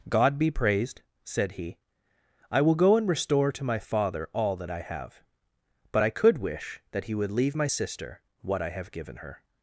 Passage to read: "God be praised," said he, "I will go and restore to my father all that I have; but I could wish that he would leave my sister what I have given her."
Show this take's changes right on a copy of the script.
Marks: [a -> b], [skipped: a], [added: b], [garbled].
"God be praised," said he, "I will go and restore to my father all that I have; but I could wish that he would leave my sister what I have given her."